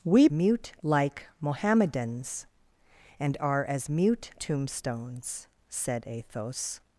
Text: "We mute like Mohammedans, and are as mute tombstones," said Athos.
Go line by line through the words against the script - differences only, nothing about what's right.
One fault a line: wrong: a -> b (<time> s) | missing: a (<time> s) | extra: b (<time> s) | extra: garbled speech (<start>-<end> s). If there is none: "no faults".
no faults